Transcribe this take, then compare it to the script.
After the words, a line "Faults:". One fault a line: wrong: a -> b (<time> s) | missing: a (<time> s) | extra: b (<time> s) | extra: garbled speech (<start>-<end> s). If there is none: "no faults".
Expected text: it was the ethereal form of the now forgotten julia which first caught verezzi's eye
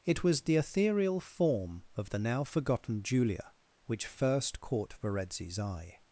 it was the ethereal form of the now forgotten julia which first caught verezzi's eye
Faults:
no faults